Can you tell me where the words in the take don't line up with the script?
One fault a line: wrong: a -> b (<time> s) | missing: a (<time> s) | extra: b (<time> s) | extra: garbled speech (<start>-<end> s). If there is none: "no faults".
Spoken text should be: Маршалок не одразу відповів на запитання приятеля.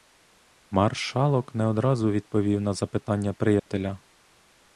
no faults